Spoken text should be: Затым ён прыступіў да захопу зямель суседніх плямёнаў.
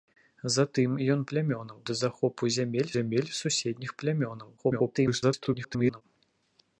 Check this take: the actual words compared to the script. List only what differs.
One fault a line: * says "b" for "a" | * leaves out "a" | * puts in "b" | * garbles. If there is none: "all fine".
* says "плямёнаў" for "прыступіў"
* puts in "зямель"
* garbles